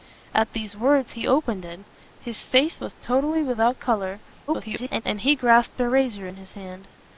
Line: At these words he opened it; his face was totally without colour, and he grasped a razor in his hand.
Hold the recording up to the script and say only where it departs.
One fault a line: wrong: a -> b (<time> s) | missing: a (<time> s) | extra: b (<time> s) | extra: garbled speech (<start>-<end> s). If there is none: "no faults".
extra: garbled speech (4.5-5.0 s)